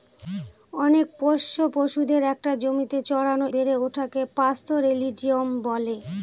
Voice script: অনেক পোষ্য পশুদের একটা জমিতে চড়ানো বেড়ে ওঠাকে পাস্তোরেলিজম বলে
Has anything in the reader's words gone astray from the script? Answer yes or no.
no